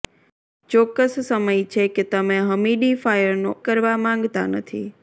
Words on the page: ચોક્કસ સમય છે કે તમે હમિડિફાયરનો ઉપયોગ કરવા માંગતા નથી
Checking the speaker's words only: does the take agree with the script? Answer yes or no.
no